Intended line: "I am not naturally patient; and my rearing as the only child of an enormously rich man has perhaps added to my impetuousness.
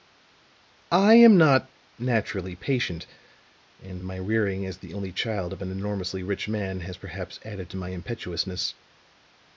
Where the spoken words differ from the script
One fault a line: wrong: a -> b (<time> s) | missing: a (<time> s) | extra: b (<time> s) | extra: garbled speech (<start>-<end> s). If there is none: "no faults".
no faults